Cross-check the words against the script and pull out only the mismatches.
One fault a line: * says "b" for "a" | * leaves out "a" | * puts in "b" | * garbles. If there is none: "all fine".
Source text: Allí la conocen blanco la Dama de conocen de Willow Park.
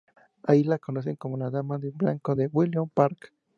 * says "como" for "blanco"
* says "blanco" for "conocen"